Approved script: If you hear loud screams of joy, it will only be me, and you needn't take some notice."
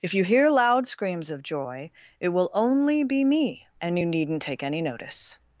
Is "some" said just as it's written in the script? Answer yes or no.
no